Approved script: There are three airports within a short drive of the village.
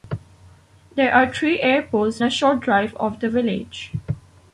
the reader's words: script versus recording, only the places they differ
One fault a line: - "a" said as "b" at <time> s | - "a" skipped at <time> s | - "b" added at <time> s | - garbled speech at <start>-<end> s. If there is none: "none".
- "within" skipped at 2.2 s